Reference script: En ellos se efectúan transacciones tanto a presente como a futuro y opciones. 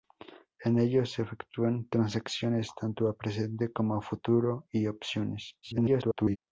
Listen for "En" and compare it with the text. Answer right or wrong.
right